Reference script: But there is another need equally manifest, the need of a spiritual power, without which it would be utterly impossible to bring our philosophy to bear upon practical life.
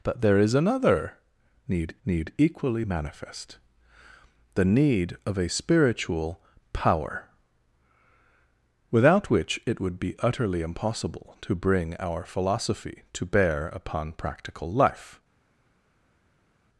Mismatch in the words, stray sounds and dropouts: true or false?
true